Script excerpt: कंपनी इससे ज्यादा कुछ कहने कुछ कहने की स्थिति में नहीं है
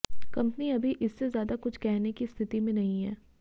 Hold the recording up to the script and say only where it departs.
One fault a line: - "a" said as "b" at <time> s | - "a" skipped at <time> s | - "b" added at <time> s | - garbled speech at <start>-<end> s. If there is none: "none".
- "अभी" added at 0.7 s
- "कुछ कहने" skipped at 2.1 s